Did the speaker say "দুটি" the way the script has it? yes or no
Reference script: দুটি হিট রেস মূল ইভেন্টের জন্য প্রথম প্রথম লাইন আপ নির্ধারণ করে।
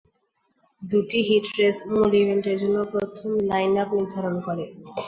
yes